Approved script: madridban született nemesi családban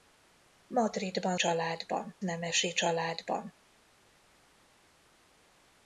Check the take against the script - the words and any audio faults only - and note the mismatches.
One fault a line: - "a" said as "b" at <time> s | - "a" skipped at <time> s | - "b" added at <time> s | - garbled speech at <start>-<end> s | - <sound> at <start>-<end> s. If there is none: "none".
- "született" said as "családban" at 1.3 s